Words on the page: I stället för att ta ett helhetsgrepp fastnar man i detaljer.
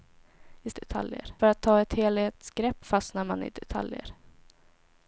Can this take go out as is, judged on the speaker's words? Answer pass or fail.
fail